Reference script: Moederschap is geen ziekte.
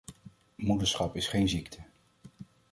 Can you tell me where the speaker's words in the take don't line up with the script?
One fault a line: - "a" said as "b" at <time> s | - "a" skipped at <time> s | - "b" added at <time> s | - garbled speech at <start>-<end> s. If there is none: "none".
none